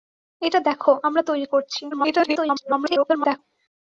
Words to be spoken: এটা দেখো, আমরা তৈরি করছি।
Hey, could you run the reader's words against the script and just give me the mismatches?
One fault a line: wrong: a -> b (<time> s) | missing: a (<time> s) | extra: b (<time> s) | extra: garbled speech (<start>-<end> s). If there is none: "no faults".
extra: garbled speech (1.9-3.4 s)